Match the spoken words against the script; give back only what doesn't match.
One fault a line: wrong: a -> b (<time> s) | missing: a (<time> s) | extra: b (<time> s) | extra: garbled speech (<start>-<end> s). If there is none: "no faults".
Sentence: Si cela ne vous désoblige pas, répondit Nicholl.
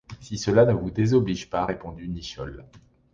no faults